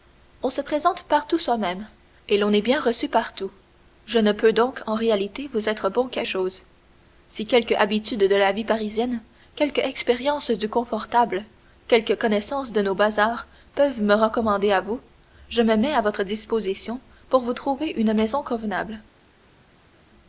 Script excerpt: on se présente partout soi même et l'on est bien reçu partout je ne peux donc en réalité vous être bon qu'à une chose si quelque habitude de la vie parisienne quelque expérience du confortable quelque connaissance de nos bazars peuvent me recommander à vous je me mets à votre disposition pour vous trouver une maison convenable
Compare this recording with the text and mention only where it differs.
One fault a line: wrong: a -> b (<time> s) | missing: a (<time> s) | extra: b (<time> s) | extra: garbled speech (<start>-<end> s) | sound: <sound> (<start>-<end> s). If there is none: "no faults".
missing: une (6.2 s)